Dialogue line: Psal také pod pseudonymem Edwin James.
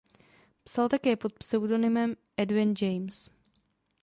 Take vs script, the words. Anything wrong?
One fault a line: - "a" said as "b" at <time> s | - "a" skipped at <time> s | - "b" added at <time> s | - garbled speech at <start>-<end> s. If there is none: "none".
none